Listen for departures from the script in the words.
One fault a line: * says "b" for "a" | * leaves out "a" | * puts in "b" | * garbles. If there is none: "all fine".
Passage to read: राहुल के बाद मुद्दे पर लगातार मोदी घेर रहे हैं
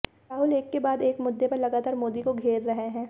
* puts in "एक"
* puts in "एक"
* puts in "को"